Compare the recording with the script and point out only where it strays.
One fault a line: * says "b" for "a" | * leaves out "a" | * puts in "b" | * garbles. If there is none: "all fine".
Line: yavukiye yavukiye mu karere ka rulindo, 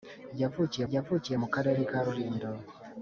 all fine